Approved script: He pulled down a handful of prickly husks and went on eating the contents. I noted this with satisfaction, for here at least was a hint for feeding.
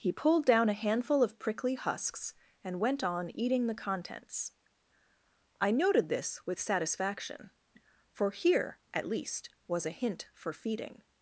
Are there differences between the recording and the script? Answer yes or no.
no